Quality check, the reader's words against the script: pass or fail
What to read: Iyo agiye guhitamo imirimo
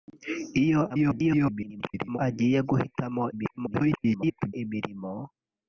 fail